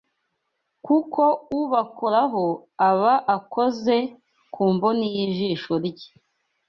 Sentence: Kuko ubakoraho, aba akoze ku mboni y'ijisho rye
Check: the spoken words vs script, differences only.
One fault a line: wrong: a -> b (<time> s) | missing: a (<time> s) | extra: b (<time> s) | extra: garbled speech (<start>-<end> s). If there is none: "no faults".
no faults